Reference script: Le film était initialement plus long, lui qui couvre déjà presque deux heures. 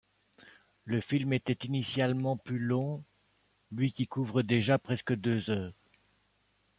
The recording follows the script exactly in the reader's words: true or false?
true